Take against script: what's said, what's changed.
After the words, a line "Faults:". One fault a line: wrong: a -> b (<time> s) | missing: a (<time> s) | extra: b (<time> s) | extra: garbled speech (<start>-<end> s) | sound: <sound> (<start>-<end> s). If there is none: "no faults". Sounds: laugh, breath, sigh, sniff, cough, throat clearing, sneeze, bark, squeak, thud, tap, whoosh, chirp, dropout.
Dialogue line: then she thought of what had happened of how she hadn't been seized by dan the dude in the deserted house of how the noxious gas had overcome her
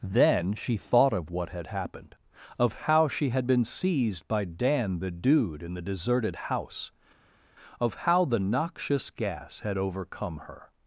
then she thought of what had happened of how she had been seized by dan the dude in the deserted house of how the noxious gas had overcome her
Faults:
wrong: hadn't -> had (3.3 s)